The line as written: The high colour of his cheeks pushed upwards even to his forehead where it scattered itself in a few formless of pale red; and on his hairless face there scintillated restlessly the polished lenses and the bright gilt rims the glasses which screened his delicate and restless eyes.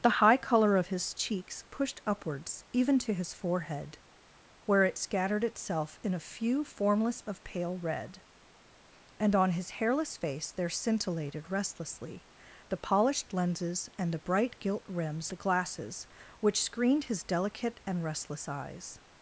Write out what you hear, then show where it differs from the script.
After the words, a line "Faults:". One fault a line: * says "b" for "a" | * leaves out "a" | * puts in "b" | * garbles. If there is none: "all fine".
The high colour of his cheeks pushed upwards even to his forehead where it scattered itself in a few formless of pale red; and on his hairless face there scintillated restlessly the polished lenses and the bright gilt rims the glasses which screened his delicate and restless eyes.
Faults:
all fine